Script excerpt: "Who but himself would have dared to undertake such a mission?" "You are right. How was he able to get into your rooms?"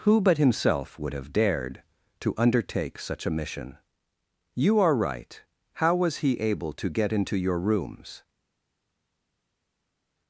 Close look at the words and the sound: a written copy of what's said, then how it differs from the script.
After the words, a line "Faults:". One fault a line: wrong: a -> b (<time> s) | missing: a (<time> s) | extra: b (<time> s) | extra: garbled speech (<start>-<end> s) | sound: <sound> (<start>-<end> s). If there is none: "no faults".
"Who but himself would have dared to undertake such a mission?" "You are right. How was he able to get into your rooms?"
Faults:
no faults